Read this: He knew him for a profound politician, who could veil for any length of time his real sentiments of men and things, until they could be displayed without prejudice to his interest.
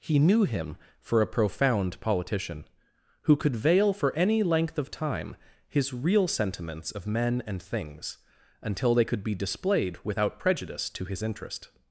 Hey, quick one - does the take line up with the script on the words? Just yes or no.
yes